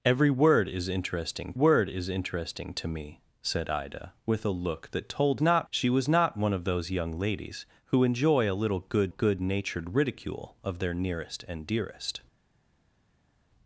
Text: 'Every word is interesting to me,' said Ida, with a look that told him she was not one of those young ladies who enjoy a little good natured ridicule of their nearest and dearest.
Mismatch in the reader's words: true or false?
true